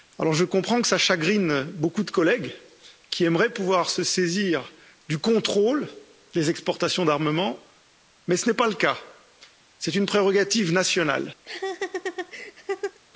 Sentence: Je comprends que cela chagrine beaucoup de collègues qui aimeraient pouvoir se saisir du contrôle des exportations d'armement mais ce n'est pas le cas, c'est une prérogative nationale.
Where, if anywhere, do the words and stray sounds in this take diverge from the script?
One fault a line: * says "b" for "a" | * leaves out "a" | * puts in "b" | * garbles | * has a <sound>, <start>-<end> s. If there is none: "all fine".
* has a laugh, 11.4-13.0 s